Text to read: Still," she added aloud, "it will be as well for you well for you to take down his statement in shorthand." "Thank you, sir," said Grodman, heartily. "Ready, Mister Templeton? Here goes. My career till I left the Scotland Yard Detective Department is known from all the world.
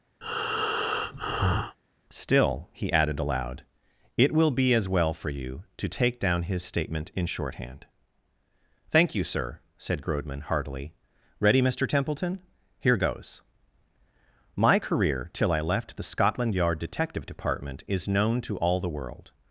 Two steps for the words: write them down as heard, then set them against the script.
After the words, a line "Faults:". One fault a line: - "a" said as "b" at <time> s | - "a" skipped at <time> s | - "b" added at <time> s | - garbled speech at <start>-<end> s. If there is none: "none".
Still," he added aloud, "it will be as well for you to take down his statement in shorthand." "Thank you, sir," said Grodman, heartily. "Ready, Mister Templeton? Here goes. My career till I left the Scotland Yard Detective Department is known to all the world.
Faults:
- "she" said as "he" at 2.7 s
- "well for you" skipped at 5.6 s
- "from" said as "to" at 18.4 s